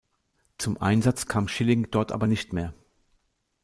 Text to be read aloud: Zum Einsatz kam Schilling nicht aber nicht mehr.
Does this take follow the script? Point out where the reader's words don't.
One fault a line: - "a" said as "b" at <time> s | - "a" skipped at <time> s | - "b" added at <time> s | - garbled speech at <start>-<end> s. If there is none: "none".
- "nicht" said as "dort" at 1.9 s